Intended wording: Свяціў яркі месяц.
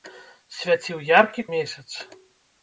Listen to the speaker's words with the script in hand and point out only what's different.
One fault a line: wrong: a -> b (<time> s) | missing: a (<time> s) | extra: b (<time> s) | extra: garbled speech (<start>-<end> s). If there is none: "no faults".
no faults